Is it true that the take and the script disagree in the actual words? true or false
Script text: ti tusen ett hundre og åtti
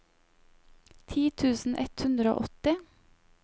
false